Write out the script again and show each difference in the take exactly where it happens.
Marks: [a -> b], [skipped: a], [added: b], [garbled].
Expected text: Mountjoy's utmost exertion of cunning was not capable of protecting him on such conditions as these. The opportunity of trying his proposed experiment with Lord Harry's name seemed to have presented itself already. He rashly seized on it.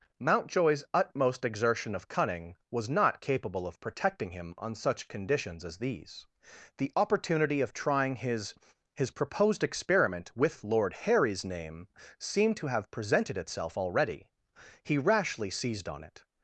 Mountjoy's utmost exertion of cunning was not capable of protecting him on such conditions as these. The opportunity of trying his [added: his] proposed experiment with Lord Harry's name seemed to have presented itself already. He rashly seized on it.